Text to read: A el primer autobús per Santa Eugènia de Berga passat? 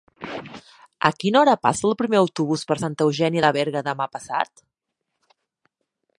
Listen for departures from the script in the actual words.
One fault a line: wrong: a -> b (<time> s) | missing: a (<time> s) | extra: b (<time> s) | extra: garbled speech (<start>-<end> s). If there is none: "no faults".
extra: quina hora passa (1.2 s)
extra: demà (3.9 s)